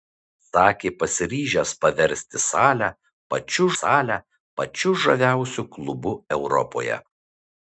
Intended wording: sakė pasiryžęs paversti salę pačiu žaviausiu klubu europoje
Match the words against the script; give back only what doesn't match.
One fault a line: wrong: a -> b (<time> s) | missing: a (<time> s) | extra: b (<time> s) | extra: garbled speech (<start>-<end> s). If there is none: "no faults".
extra: salę pačiu (3.8 s)